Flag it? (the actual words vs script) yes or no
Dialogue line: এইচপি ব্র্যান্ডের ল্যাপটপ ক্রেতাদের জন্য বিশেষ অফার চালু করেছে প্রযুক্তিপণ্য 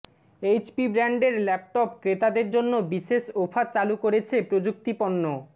no